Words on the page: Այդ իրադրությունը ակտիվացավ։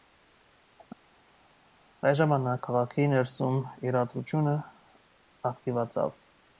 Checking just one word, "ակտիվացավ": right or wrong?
right